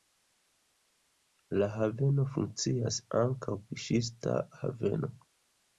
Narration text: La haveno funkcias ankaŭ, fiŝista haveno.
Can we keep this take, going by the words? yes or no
yes